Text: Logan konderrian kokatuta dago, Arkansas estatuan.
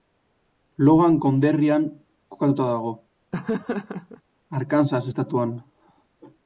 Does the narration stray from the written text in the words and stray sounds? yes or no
yes